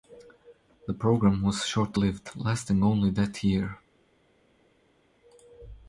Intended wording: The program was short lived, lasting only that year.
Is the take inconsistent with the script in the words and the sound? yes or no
no